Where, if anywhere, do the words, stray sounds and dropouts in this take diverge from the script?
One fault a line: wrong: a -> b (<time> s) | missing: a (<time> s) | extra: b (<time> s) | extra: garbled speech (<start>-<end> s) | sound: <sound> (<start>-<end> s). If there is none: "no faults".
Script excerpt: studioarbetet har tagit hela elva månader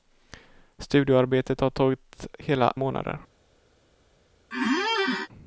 missing: elva (2.7 s)
sound: squeak (4.5-5.3 s)